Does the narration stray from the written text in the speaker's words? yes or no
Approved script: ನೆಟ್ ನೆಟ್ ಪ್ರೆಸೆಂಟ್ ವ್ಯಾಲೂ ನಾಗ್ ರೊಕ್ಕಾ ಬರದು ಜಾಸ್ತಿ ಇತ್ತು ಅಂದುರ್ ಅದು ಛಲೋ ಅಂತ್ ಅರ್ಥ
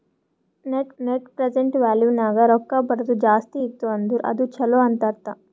no